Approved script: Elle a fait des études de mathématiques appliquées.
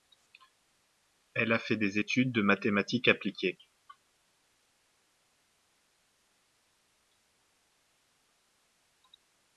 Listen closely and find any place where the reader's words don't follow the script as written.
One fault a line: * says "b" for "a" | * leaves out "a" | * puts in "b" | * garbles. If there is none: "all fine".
all fine